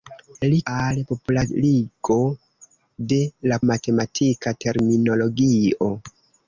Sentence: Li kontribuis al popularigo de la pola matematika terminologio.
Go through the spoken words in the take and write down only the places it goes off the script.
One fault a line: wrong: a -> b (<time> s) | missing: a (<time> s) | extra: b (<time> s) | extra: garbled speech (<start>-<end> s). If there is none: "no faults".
missing: kontribuis (0.6 s)
missing: pola (3.6 s)